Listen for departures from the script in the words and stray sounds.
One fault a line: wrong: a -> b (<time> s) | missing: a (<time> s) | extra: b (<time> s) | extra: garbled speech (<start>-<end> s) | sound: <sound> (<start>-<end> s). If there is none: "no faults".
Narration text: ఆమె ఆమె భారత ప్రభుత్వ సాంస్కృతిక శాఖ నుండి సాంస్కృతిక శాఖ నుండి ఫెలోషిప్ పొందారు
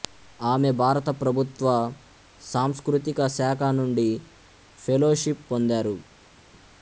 missing: ఆమె (0.7 s)
missing: సాంస్కృతిక శాఖ నుండి (4.1 s)